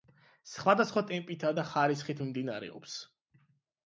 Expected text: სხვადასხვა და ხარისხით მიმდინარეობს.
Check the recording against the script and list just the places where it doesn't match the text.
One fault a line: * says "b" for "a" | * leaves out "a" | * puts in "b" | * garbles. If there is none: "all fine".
* puts in "ტემპითა"